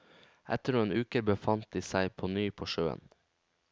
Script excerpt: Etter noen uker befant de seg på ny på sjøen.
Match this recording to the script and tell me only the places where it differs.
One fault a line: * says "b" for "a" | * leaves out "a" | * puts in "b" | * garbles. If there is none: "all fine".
all fine